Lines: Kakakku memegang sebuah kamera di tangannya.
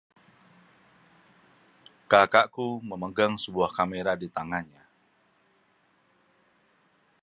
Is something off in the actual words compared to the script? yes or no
no